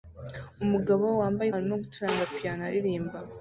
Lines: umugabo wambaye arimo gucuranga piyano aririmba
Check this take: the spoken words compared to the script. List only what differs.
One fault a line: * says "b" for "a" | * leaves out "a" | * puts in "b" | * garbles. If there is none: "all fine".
all fine